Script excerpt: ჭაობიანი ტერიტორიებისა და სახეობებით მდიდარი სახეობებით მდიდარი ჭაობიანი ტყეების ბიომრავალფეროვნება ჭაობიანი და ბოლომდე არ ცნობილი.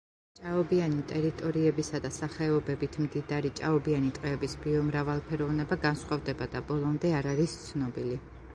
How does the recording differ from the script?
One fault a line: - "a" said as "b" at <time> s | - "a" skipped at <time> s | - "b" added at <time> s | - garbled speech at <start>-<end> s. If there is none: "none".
- "სახეობებით მდიდარი" skipped at 3.5 s
- "ჭაობიანი" said as "განსხვავდება" at 5.9 s
- "არის" added at 7.4 s